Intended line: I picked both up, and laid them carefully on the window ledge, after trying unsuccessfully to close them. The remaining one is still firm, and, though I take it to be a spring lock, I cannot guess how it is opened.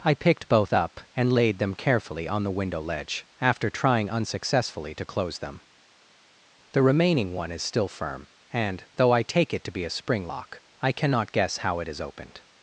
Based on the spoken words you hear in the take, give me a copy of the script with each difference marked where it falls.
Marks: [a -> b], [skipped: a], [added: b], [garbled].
I picked both up, and laid them carefully on the window ledge, after trying unsuccessfully to close them. The remaining one is still firm, and, though I take it to be a spring lock, I cannot guess how it is opened.